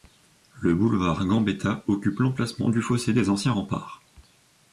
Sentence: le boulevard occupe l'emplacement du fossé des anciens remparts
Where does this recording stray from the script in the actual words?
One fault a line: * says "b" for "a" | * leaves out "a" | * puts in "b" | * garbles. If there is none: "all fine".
* puts in "gambetta"